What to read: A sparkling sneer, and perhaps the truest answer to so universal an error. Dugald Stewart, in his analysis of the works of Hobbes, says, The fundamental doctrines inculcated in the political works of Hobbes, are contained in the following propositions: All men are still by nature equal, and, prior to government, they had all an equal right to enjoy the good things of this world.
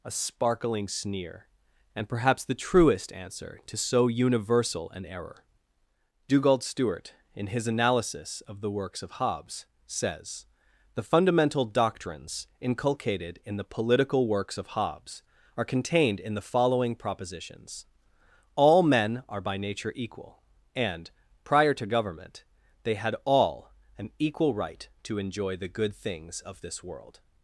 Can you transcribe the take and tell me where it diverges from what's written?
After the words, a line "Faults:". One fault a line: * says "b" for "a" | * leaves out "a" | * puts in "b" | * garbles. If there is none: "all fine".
A sparkling sneer, and perhaps the truest answer to so universal an error. Dugald Stewart, in his analysis of the works of Hobbes, says, The fundamental doctrines inculcated in the political works of Hobbes, are contained in the following propositions: All men are by nature equal, and, prior to government, they had all an equal right to enjoy the good things of this world.
Faults:
* leaves out "still"